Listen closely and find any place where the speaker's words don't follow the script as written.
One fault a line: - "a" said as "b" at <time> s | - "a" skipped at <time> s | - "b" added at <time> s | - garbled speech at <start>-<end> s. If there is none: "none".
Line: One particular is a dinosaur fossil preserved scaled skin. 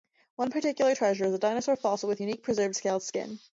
- "treasure" added at 0.9 s
- "with unique" added at 2.1 s